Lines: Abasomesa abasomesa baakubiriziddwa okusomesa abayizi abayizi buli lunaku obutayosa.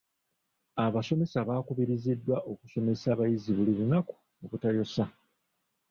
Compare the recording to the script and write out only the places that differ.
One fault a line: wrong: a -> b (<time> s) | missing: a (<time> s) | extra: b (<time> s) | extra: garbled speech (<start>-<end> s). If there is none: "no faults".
missing: abasomesa (1.4 s)
missing: abayizi (3.5 s)